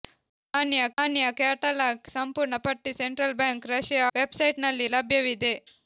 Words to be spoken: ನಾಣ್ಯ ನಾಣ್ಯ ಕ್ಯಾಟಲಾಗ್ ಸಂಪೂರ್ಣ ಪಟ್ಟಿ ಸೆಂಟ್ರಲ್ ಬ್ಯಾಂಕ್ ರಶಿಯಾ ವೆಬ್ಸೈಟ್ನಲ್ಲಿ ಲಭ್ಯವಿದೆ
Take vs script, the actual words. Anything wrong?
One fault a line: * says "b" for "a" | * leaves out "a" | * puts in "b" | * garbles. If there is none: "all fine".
all fine